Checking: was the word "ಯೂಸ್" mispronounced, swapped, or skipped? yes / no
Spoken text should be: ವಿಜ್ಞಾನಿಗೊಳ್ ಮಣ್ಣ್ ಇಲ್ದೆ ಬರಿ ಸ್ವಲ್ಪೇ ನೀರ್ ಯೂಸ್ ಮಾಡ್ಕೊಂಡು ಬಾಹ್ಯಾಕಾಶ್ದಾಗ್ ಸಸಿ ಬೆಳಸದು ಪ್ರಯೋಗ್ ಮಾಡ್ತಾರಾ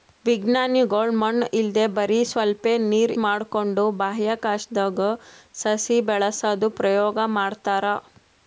yes